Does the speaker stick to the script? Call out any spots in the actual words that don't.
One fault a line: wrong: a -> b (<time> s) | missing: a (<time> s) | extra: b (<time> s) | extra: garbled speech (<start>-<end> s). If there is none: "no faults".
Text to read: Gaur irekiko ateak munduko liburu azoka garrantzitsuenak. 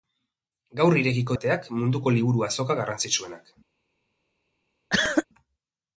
no faults